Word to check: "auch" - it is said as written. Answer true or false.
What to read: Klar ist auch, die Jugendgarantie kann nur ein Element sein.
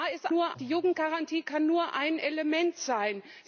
false